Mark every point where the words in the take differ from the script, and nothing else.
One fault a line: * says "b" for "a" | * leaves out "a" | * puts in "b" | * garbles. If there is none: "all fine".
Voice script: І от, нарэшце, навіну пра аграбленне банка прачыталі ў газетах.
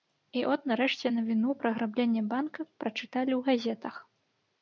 all fine